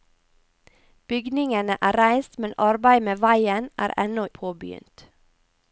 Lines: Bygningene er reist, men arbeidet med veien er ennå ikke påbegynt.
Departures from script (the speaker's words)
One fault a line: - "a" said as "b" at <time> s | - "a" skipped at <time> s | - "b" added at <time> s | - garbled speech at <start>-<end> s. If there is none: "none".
- "ikke" skipped at 4.3 s